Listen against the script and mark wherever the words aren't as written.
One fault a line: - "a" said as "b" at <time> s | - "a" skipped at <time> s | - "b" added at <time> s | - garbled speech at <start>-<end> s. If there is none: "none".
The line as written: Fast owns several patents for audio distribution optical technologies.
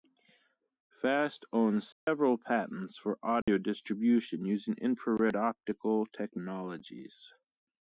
- "using infrared" added at 4.5 s